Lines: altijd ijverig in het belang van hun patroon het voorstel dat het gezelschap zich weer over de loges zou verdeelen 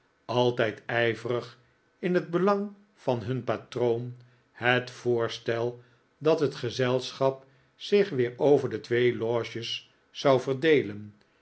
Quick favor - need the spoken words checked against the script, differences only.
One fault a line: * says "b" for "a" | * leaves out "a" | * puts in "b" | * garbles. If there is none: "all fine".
* puts in "twee"